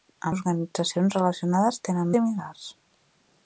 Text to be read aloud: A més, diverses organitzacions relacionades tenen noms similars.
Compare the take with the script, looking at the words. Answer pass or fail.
fail